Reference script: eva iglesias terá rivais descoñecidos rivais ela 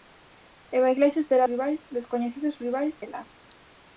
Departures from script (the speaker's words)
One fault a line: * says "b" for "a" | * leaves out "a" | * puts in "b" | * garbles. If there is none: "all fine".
all fine